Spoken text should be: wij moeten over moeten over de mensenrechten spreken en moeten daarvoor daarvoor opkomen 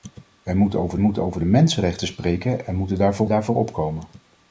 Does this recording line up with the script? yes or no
yes